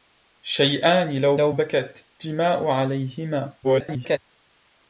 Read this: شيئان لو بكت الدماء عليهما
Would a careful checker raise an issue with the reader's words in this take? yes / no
yes